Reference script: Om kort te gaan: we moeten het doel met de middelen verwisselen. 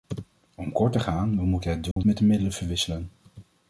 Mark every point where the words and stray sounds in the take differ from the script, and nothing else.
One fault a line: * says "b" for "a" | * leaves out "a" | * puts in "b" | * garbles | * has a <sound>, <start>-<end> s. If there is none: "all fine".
* has a dropout, 1.9-2.0 s